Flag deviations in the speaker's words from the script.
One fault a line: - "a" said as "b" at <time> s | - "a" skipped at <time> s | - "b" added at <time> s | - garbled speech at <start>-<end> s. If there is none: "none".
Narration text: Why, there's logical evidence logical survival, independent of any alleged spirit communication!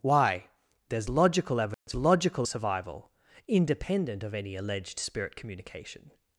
none